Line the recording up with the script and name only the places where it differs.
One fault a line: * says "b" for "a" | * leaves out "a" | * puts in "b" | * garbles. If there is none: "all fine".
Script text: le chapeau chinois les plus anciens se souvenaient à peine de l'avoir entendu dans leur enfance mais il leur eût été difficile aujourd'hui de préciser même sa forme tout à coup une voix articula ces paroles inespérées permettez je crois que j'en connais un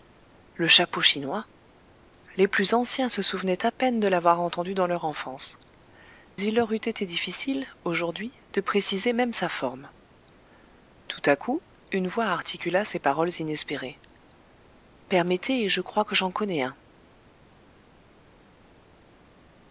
* leaves out "mais"